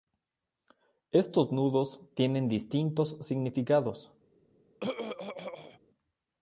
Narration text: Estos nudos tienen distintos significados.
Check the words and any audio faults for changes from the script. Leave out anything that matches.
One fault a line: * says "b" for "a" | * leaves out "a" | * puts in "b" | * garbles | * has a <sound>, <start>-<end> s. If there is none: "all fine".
* has a throat clearing, 4.8-5.8 s